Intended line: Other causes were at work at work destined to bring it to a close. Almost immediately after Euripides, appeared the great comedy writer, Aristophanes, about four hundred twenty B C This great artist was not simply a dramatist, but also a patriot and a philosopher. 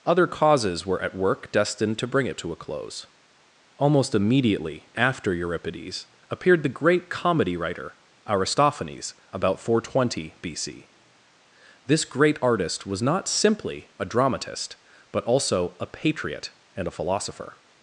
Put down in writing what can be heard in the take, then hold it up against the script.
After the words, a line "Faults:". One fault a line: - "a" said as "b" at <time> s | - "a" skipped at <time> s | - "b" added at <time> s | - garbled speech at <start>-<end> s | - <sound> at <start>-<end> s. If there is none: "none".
Other causes were at work destined to bring it to a close. Almost immediately after Euripides, appeared the great comedy writer, Aristophanes, about four hundred twenty B C This great artist was not simply a dramatist, but also a patriot and a philosopher.
Faults:
- "at work" skipped at 1.5 s